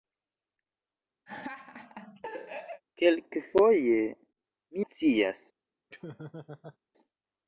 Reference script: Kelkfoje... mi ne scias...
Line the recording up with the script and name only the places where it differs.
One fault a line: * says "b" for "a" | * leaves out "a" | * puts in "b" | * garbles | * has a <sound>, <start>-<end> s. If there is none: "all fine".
* has a laugh, 1.3-2.8 s
* leaves out "ne"
* has a laugh, 5.9-6.8 s